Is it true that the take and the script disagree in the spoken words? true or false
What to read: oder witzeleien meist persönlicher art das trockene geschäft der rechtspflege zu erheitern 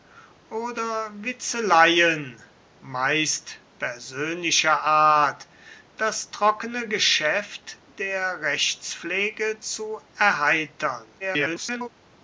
true